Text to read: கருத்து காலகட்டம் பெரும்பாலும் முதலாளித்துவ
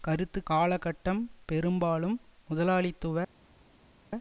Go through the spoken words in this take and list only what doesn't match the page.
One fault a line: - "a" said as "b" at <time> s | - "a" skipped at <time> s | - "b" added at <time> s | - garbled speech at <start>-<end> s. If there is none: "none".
none